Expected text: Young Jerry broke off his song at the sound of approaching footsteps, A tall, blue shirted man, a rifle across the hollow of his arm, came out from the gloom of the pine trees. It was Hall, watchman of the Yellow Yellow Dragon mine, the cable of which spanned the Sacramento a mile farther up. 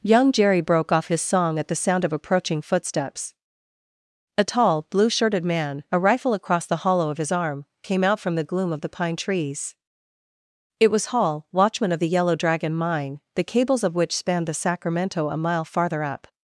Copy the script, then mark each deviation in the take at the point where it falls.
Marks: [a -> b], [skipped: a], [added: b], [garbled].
Young Jerry broke off his song at the sound of approaching footsteps, A tall, blue shirted man, a rifle across the hollow of his arm, came out from the gloom of the pine trees. It was Hall, watchman of the Yellow [skipped: Yellow] Dragon mine, the [cable -> cables] of which spanned the Sacramento a mile farther up.